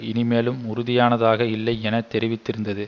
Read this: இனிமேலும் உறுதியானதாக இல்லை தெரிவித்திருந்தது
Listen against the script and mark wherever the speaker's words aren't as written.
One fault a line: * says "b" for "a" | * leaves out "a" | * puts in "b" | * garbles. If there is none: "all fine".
* puts in "என"